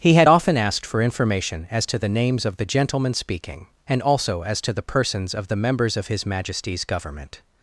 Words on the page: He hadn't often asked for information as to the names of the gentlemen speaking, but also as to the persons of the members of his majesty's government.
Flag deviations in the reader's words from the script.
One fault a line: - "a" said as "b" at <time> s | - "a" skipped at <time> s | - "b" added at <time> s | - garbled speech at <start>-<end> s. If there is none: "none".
- "hadn't" said as "had" at 0.1 s
- "but" said as "and" at 3.8 s